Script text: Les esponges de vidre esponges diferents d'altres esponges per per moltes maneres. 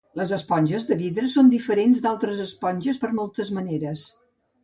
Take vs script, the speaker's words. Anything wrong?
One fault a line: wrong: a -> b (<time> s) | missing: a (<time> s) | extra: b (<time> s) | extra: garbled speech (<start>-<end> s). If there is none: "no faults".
wrong: esponges -> són (1.3 s)
missing: per (3.1 s)